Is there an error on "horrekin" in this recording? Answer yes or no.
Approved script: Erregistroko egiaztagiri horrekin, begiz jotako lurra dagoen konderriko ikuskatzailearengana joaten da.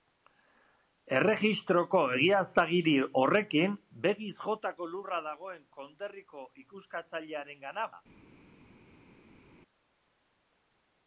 no